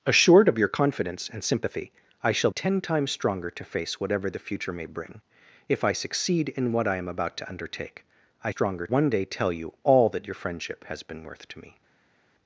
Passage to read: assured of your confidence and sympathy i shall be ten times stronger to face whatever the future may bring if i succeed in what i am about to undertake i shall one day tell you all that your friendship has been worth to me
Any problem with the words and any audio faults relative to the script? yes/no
yes